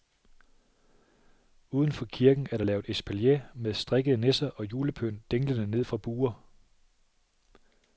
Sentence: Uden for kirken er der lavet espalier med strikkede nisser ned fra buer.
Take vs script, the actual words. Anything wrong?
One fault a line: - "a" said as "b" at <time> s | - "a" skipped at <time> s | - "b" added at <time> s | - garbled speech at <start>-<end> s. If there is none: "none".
- "og julepynt dinglende" added at 4.5 s